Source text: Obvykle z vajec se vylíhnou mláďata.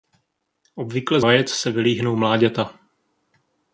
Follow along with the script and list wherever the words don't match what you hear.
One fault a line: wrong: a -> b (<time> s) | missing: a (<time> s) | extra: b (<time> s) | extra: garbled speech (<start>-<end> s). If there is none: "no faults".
no faults